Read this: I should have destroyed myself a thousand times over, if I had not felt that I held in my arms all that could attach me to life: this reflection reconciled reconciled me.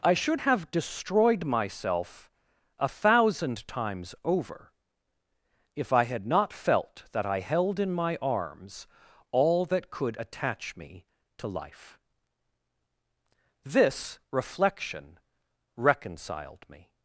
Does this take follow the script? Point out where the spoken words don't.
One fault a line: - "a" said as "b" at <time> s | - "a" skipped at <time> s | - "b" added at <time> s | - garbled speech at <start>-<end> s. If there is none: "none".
- "reconciled" skipped at 16.7 s